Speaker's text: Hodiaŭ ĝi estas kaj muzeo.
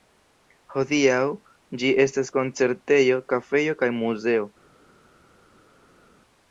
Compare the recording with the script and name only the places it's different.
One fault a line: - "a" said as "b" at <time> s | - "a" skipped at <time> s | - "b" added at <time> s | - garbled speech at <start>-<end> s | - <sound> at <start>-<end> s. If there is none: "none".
- "koncertejo kafejo" added at 2.4 s